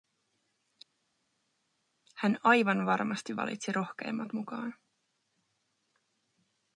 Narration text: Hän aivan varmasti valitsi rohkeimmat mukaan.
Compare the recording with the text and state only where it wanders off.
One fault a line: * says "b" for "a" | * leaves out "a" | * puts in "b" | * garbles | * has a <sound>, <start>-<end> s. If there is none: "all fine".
all fine